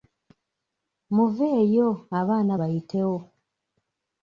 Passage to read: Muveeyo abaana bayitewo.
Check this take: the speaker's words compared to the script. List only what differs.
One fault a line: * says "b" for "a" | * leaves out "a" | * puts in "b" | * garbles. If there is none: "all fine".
all fine